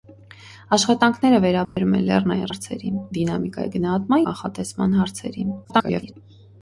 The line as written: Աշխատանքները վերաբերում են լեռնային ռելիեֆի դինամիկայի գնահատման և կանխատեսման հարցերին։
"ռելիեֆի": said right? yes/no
no